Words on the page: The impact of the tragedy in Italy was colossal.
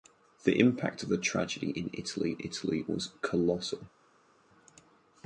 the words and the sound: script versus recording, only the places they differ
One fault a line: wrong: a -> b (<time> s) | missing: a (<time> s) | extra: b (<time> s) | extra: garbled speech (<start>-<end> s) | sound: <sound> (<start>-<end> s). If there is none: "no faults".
extra: Italy (2.4 s)